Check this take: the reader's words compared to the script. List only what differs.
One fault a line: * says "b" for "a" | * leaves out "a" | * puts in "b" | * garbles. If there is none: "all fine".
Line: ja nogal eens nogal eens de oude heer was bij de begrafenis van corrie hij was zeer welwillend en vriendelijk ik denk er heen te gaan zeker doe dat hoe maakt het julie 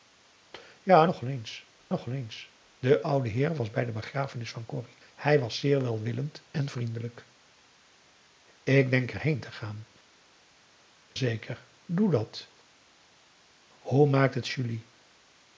all fine